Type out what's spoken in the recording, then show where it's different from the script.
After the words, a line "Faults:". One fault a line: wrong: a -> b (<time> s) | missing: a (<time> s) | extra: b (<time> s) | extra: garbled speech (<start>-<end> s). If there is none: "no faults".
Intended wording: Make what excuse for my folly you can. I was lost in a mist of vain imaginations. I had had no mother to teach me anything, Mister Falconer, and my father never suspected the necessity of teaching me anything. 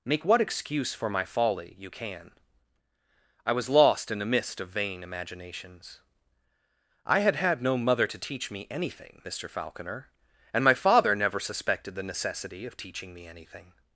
Make what excuse for my folly you can. I was lost in a mist of vain imaginations. I had had no mother to teach me anything, Mister Falconer, and my father never suspected the necessity of teaching me anything.
Faults:
no faults